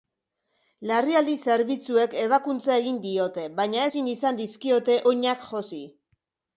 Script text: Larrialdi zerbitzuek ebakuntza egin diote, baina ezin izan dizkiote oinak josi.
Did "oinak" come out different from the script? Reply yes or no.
no